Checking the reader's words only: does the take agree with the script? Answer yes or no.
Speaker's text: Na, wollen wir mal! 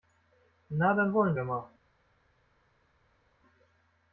no